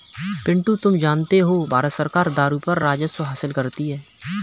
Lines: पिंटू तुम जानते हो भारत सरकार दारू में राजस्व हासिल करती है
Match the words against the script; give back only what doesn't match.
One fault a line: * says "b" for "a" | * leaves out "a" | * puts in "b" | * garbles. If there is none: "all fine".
* says "पर" for "में"